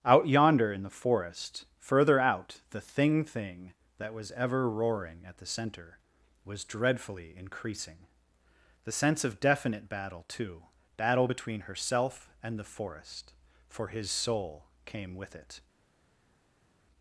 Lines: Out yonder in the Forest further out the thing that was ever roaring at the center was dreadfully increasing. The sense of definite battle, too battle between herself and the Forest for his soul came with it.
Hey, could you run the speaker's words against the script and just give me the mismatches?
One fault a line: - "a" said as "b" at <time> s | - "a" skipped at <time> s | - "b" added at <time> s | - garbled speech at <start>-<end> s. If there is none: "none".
- "thing" added at 3.2 s